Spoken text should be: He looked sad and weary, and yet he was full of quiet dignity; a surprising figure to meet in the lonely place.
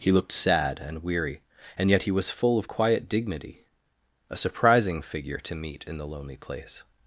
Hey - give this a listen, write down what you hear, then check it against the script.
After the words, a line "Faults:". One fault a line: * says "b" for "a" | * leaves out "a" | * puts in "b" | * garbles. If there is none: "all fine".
He looked sad and weary, and yet he was full of quiet dignity; a surprising figure to meet in the lonely place.
Faults:
all fine